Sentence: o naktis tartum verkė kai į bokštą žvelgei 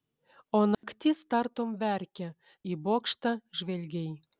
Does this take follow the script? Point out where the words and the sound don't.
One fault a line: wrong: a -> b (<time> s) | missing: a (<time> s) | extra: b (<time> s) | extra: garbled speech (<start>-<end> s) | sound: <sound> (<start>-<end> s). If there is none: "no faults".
sound: dropout (0.7-0.8 s)
missing: kai (2.3 s)